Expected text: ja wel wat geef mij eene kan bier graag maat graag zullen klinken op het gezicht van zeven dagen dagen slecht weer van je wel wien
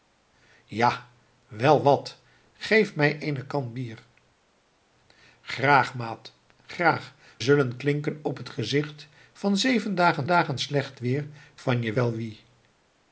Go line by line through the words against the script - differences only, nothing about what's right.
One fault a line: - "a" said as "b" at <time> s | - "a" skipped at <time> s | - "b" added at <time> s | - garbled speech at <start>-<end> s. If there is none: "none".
none